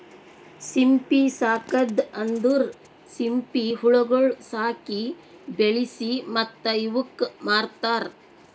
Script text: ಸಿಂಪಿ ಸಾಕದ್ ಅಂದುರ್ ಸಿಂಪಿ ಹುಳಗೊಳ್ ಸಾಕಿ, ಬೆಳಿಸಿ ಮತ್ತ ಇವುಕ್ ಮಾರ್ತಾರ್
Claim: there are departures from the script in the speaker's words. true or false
false